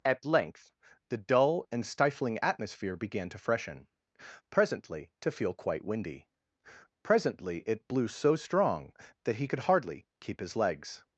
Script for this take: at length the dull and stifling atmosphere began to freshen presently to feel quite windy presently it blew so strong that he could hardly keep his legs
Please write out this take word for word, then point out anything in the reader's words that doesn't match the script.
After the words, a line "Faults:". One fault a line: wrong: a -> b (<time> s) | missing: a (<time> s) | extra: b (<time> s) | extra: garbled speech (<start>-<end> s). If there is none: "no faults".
at length the dull and stifling atmosphere began to freshen presently to feel quite windy presently it blew so strong that he could hardly keep his legs
Faults:
no faults